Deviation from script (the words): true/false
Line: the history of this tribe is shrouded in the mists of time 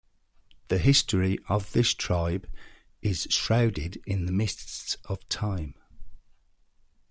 false